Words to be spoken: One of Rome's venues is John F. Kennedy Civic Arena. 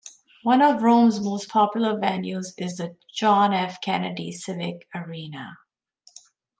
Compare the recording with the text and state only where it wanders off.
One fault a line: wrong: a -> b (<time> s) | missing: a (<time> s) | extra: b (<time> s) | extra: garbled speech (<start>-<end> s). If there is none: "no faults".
extra: most popular (1.2 s)
extra: the (2.8 s)